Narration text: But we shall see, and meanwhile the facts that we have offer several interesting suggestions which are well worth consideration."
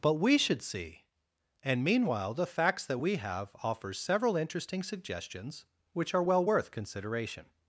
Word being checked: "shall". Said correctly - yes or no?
no